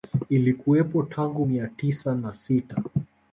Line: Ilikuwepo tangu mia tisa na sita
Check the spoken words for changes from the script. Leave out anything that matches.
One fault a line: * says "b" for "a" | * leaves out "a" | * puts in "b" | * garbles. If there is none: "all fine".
all fine